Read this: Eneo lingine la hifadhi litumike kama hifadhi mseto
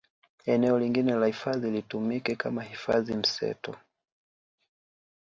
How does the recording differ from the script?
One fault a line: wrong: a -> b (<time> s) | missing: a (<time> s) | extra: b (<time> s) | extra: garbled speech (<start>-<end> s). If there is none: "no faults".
no faults